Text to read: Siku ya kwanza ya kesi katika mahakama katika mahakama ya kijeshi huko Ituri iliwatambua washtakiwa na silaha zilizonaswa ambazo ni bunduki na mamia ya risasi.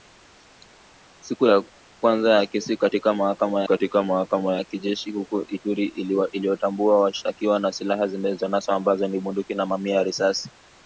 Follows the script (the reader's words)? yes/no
yes